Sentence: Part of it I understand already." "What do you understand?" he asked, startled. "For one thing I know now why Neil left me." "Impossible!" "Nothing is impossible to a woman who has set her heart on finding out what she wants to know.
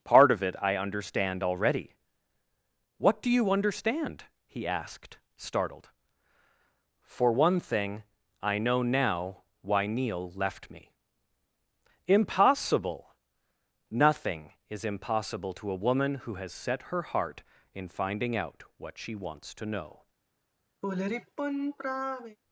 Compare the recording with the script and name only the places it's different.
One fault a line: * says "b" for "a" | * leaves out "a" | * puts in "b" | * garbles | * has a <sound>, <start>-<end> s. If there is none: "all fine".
* says "in" for "on"
* has a sigh, 20.8-22.4 s